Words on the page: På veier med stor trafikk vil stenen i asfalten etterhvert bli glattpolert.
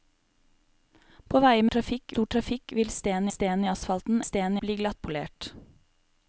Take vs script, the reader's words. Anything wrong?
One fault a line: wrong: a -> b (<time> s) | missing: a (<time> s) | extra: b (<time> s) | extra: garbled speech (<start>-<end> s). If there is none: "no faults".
wrong: med -> trafikk (1.7 s)
extra: stenen (3.3 s)
wrong: etterhvert -> stenen (4.2 s)